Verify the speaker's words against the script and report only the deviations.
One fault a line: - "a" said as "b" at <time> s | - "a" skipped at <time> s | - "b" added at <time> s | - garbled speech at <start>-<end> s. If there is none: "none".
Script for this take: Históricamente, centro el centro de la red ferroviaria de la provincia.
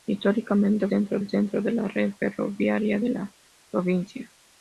none